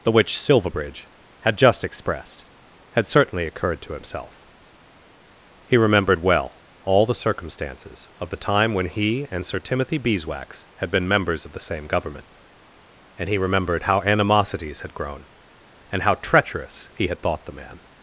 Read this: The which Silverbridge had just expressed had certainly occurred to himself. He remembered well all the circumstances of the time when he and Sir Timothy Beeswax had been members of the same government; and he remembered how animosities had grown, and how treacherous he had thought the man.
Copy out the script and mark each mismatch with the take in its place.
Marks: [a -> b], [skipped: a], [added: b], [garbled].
The which Silverbridge had just expressed had certainly occurred to himself. He remembered well all the circumstances of the time when he and Sir Timothy Beeswax had been members of the same government; and he remembered how animosities had grown, and how treacherous he had thought the man.